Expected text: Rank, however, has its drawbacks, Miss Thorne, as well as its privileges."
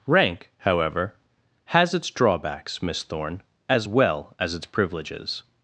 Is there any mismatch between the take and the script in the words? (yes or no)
no